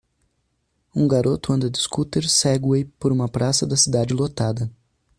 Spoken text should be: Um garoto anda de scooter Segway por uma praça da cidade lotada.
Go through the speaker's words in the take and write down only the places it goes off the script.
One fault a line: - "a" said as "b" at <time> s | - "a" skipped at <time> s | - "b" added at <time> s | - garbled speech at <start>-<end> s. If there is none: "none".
none